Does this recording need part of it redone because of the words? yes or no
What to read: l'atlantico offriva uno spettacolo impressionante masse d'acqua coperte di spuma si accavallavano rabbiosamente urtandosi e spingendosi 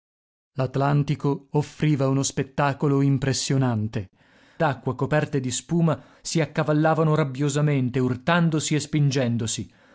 yes